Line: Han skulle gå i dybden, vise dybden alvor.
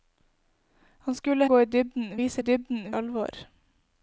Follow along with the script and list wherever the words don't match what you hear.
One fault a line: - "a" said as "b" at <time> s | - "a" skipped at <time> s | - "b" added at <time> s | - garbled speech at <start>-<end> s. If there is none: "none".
none